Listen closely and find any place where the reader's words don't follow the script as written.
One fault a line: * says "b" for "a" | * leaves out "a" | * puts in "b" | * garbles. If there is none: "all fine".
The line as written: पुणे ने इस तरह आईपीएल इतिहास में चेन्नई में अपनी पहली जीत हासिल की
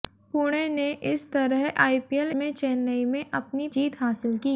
* leaves out "इतिहास"
* leaves out "पहली"